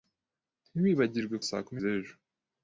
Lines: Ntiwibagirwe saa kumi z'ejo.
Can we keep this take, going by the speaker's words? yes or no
yes